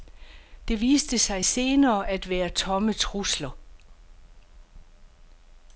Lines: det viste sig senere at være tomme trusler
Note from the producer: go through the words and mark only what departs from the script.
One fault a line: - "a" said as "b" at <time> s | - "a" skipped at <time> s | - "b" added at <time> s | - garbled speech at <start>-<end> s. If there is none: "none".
none